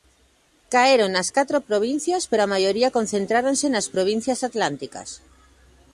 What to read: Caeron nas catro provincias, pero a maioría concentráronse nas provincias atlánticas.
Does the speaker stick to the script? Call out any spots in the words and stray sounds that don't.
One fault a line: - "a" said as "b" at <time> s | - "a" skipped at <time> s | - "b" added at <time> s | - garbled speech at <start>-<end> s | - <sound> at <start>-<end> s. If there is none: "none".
none